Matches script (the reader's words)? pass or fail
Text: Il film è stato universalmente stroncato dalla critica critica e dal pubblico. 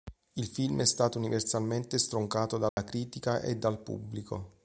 fail